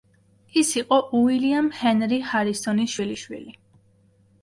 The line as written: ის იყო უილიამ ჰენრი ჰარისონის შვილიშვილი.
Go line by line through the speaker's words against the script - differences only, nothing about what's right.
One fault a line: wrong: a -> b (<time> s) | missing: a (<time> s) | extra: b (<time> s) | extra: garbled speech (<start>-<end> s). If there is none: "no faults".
no faults